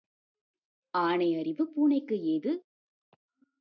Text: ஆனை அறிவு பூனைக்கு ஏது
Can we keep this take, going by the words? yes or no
yes